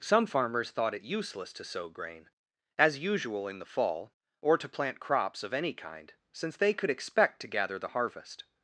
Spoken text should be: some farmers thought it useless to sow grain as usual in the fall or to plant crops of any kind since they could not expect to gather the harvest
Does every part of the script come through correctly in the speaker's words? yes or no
no